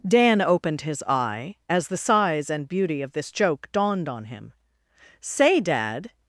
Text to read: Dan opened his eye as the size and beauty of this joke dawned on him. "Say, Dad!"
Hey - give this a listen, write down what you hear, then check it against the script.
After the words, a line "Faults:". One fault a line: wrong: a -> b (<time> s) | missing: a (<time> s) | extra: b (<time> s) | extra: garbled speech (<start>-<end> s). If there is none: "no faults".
Dan opened his eye as the size and beauty of this joke dawned on him. "Say, Dad!"
Faults:
no faults